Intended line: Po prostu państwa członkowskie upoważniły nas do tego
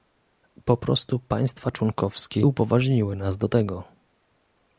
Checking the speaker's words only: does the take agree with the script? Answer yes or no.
yes